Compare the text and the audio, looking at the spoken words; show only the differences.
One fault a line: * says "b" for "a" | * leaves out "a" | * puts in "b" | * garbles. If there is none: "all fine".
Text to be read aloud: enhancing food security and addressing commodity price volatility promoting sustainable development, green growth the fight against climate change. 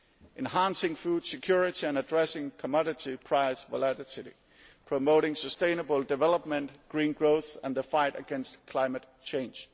* puts in "and"